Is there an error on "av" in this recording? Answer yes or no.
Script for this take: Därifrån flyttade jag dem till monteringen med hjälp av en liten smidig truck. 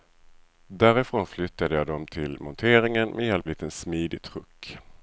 yes